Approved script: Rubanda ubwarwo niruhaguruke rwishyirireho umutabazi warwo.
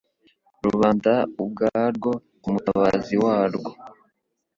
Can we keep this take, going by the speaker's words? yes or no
no